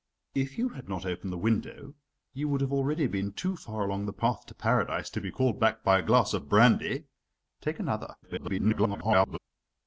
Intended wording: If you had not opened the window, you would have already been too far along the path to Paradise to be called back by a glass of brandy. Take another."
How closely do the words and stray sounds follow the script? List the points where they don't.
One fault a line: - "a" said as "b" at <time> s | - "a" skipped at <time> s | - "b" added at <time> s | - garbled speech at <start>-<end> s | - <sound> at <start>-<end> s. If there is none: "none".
- garbled speech at 8.2-9.4 s